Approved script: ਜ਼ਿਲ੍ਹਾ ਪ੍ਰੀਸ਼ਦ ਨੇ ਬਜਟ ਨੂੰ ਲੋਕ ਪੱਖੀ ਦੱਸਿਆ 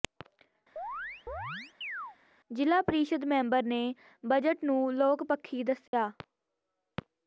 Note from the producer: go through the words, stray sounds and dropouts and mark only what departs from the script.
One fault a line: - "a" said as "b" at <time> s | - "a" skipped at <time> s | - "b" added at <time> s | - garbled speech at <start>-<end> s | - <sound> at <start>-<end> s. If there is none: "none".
- chirp at 0.8-2.2 s
- "ਮੈਂਬਰ" added at 3.2 s
- dropout at 5.9-5.9 s